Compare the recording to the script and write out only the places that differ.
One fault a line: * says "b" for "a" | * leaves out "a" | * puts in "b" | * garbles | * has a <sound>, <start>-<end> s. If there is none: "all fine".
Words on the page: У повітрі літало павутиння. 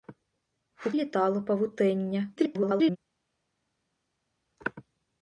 * leaves out "повітрі"
* garbles